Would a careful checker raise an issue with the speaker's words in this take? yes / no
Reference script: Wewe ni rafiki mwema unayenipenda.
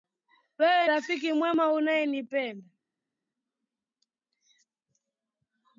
yes